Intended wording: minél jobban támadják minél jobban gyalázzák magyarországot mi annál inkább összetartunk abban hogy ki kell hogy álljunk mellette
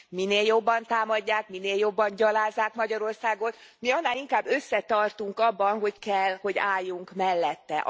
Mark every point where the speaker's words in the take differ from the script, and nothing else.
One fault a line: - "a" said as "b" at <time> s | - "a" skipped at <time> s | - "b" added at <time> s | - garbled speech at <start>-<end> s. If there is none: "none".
- "ki" skipped at 6.0 s